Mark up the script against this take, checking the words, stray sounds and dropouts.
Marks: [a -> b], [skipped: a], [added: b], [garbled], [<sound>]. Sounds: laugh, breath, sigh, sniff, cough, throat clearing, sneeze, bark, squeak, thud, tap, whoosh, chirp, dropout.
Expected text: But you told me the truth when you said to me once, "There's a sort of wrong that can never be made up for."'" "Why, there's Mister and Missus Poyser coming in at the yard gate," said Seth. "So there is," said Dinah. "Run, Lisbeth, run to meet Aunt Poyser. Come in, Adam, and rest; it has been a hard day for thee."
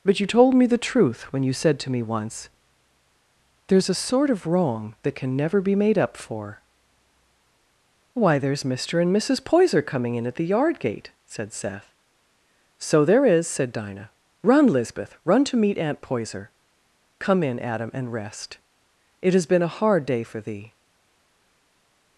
But you told me the truth when you said to me once, "There's a sort of wrong that can never be made up for."'" "Why, there's Mister and Missus Poyser coming in at the yard gate," said Seth. "So there is," said Dinah. "Run, Lisbeth, run to meet Aunt Poyser. Come in, Adam, and rest; it has been a hard day for thee."